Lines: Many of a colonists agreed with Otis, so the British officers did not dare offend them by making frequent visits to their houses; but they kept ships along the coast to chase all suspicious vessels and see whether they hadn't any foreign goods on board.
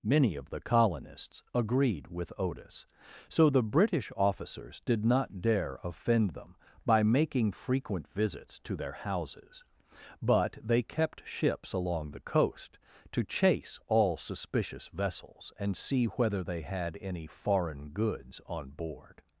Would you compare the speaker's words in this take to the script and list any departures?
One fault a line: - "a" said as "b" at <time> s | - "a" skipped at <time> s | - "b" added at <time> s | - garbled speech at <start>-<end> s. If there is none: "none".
- "a" said as "the" at 0.5 s
- "hadn't" said as "had" at 16.6 s